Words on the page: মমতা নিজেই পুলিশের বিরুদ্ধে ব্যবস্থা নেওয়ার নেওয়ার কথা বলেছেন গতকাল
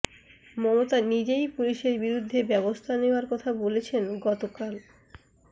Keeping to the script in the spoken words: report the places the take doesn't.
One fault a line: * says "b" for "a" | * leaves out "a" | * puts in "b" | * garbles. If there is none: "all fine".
* leaves out "নেওয়ার"